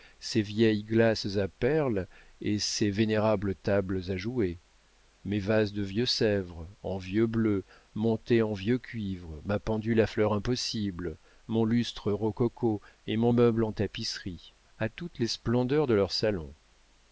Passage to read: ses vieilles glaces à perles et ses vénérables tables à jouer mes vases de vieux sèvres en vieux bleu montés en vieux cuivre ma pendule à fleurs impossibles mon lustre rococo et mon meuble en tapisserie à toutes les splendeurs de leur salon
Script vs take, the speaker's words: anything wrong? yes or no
no